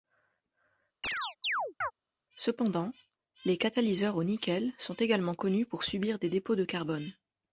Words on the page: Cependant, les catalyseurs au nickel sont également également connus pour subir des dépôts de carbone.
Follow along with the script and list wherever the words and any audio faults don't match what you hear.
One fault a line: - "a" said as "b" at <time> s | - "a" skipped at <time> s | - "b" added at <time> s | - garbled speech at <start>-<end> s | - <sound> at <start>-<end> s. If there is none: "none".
- chirp at 1.0-1.9 s
- "également" skipped at 5.3 s